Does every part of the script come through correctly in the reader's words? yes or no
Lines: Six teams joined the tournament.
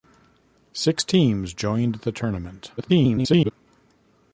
no